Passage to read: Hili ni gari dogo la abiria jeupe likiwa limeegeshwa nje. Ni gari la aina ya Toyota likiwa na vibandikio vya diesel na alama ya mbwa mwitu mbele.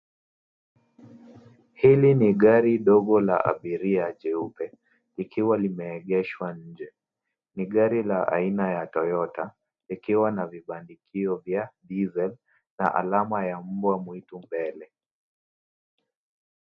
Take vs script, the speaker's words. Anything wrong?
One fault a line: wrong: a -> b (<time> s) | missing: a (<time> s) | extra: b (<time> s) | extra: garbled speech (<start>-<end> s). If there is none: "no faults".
no faults